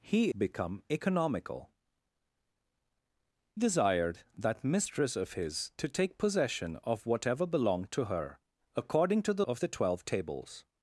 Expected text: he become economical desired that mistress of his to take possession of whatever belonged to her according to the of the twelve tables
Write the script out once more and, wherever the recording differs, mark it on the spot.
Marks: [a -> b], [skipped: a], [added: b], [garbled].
he become economical desired that mistress of his to take possession of whatever belonged to her according to the of the twelve tables